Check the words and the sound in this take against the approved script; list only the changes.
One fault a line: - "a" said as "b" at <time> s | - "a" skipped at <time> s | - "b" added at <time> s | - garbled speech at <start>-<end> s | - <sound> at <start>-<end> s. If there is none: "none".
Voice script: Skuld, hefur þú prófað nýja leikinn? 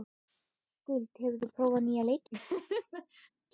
- laugh at 2.3-3.3 s